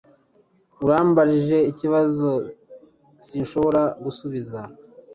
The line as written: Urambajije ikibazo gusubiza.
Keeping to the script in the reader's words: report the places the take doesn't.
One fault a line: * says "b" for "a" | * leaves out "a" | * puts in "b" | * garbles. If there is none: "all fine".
* puts in "sinshobora"